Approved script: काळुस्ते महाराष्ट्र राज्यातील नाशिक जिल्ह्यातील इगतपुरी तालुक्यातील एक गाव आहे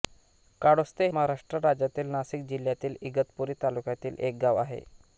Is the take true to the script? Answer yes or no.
yes